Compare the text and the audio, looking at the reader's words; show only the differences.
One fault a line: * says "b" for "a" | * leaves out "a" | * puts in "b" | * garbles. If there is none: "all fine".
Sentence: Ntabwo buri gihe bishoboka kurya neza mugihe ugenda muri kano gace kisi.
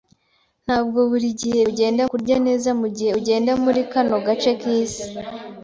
* says "ugenda" for "bishoboka"